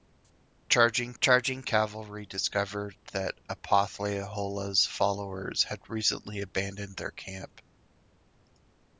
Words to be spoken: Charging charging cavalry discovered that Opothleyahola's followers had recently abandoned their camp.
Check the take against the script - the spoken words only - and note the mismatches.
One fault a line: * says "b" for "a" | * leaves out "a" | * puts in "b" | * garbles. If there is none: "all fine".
all fine